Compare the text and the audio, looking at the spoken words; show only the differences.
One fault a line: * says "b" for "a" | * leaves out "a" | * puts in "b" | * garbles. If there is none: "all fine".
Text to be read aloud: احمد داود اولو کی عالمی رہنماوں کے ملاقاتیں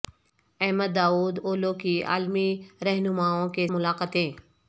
all fine